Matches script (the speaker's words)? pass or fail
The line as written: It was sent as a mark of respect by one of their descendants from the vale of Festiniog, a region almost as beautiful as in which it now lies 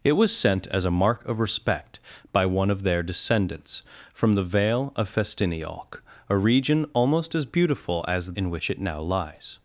pass